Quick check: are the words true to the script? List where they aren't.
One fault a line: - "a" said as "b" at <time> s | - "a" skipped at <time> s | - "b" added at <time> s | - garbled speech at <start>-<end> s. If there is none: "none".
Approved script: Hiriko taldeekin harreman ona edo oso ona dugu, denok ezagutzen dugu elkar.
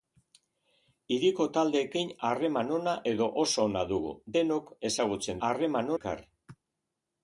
- "dugu" said as "harreman" at 5.5 s